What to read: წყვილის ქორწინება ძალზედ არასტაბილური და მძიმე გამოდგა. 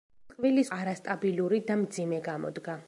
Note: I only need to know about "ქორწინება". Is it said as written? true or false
false